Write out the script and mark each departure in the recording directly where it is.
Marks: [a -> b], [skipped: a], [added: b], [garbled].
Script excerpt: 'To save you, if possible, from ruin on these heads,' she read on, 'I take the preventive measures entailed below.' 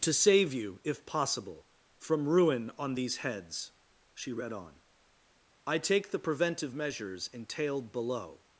'To save you, if possible, from ruin on these heads,' she read on, 'I take the preventive measures entailed below.'